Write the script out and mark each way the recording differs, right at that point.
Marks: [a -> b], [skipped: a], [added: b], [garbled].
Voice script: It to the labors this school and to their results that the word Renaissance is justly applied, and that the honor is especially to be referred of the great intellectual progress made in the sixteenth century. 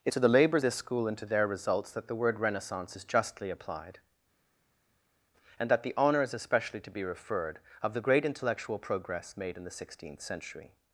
It to the labors this school and to their results that the word Renaissance is justly applied, and that the honor is especially to be referred of the great intellectual progress made in the sixteenth century.